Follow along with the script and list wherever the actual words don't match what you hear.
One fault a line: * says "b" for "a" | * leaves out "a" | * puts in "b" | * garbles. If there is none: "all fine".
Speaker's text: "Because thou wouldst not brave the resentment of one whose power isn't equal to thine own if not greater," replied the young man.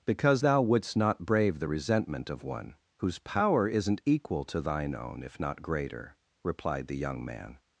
all fine